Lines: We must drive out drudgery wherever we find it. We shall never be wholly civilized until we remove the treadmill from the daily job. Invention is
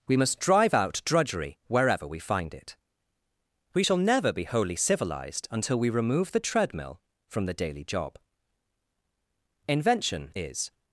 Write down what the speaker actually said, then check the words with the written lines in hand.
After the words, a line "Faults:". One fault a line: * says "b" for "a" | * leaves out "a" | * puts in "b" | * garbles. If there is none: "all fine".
We must drive out drudgery wherever we find it. We shall never be wholly civilized until we remove the treadmill from the daily job. Invention is
Faults:
all fine